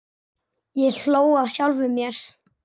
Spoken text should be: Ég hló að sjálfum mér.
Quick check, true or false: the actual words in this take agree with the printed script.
true